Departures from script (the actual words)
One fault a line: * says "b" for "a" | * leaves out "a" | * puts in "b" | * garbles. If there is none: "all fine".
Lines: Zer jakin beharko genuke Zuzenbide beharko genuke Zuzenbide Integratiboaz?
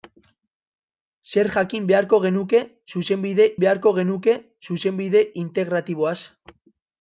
all fine